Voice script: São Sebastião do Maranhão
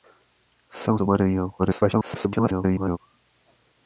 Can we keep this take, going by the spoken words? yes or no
no